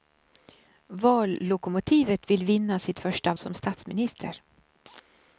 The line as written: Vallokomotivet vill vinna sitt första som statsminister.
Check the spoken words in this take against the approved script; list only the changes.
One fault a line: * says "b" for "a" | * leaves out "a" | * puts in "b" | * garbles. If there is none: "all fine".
all fine